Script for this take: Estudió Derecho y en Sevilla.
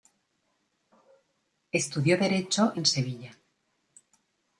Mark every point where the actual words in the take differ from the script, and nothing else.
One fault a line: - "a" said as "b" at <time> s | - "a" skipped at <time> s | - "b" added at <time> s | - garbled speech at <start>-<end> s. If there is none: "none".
none